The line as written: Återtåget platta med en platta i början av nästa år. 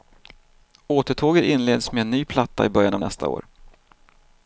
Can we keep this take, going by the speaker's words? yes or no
no